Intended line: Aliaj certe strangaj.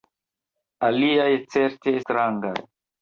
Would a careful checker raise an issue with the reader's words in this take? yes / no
no